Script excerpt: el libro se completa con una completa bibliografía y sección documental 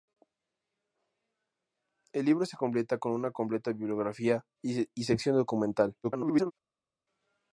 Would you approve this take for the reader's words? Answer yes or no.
no